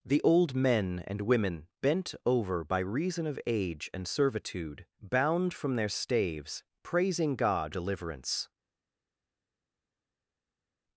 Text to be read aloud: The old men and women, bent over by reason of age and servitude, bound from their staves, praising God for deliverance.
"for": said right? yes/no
no